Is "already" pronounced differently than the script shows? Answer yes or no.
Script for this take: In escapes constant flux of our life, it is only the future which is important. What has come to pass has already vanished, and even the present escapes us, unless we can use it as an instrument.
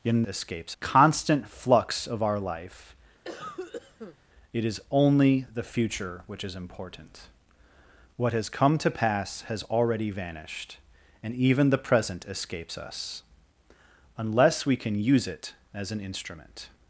no